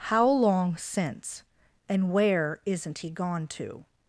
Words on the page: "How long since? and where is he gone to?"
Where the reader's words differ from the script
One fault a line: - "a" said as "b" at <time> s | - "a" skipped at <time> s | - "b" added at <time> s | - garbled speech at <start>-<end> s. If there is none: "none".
- "is" said as "isn't" at 2.6 s